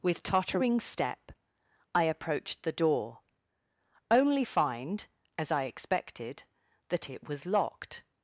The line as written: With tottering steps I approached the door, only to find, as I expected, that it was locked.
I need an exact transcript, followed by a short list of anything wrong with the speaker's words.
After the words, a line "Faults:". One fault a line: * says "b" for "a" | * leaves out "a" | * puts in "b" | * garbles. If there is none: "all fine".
With tottering step I approached the door, only find, as I expected, that it was locked.
Faults:
* says "step" for "steps"
* leaves out "to"